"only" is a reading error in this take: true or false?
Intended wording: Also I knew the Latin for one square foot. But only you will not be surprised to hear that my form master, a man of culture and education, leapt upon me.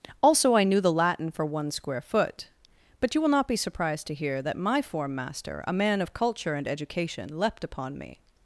true